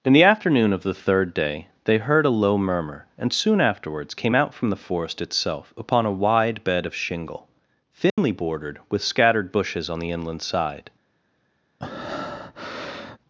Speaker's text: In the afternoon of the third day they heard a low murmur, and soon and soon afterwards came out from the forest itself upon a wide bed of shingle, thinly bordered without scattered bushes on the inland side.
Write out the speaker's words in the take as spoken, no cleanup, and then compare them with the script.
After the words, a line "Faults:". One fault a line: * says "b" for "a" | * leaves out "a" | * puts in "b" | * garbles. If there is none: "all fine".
In the afternoon of the third day they heard a low murmur, and soon afterwards came out from the forest itself upon a wide bed of shingle, thinly bordered with scattered bushes on the inland side.
Faults:
* leaves out "and soon"
* says "with" for "without"